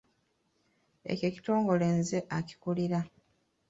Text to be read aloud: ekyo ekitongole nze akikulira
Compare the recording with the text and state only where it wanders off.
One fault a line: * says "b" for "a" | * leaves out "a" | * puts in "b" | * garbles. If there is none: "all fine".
all fine